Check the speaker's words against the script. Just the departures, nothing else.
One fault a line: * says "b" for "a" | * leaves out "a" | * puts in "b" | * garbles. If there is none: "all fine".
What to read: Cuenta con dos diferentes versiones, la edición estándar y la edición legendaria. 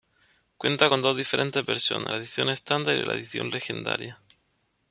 all fine